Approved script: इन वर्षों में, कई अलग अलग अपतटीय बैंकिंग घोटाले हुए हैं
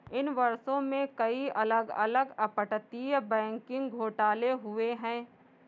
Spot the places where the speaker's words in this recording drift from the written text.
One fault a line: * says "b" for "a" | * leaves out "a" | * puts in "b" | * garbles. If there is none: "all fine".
all fine